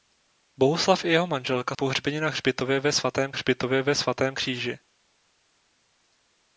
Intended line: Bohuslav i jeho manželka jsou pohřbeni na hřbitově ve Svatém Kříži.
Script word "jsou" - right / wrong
wrong